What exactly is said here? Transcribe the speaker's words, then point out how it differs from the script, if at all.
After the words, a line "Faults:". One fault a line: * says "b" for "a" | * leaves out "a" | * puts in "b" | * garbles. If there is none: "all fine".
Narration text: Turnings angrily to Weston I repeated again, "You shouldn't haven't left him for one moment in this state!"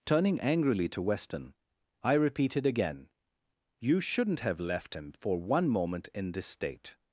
Turning angrily to Weston I repeated again, "You shouldn't have left him for one moment in this state!"
Faults:
* says "Turning" for "Turnings"
* says "have" for "haven't"